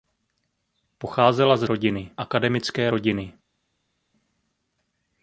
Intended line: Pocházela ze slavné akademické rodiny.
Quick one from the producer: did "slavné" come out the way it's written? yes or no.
no